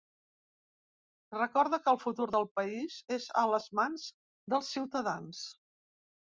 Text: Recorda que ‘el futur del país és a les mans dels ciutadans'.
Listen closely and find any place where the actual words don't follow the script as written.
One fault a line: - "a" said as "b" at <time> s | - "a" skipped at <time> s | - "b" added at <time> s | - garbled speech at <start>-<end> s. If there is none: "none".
none